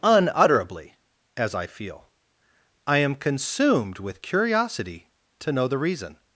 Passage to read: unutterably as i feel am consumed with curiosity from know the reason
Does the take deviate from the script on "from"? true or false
true